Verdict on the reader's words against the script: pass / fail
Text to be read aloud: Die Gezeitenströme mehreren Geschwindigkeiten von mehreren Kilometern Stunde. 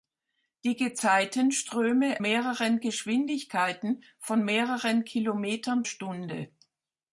pass